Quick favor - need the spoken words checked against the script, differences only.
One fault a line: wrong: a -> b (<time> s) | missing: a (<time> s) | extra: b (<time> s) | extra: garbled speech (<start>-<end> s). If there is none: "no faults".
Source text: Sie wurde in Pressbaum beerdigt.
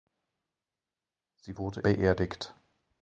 missing: in Pressbaum (1.8 s)